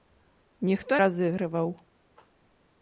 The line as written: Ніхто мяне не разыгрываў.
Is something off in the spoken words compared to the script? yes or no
yes